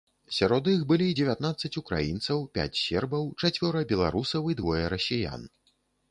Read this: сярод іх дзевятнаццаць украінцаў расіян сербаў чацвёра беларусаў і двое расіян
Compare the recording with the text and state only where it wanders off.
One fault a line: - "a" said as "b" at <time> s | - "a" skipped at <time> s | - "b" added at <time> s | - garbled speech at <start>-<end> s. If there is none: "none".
- "былі" added at 0.9 s
- "расіян" said as "пяць" at 2.6 s